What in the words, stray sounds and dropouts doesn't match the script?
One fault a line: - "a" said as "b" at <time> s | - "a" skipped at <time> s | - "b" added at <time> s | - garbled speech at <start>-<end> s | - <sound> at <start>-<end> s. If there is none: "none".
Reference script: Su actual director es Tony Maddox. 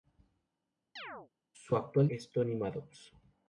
- chirp at 1.0-1.3 s
- "director" skipped at 2.1 s